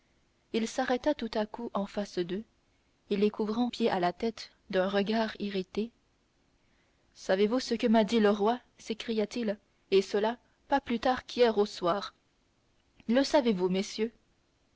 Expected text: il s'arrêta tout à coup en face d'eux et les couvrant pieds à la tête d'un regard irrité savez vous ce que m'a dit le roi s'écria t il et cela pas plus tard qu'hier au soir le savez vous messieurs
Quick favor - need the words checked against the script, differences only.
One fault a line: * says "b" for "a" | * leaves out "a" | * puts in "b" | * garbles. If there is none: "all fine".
all fine